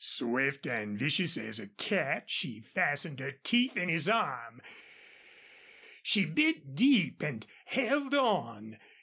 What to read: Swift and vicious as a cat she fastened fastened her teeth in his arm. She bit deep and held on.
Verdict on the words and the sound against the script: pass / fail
fail